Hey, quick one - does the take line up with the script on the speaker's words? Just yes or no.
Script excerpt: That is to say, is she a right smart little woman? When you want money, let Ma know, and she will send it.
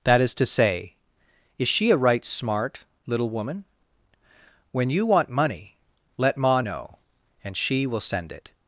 yes